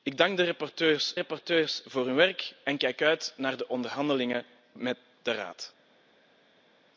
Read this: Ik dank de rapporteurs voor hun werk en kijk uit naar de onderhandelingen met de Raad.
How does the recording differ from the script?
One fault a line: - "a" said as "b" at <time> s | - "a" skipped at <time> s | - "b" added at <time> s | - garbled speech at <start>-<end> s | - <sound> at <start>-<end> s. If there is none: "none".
- "rapporteurs" added at 1.2 s